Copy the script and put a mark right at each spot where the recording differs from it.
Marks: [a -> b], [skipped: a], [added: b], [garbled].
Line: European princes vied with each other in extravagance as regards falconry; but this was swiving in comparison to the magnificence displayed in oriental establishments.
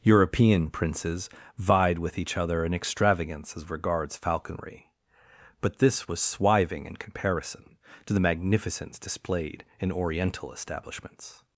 European princes vied with each other in extravagance as regards falconry; but this was swiving in comparison to the magnificence displayed in oriental establishments.